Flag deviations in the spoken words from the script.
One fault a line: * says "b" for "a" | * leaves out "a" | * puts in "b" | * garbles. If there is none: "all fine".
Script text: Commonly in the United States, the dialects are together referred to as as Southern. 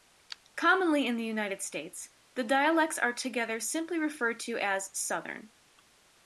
* puts in "simply"
* leaves out "as"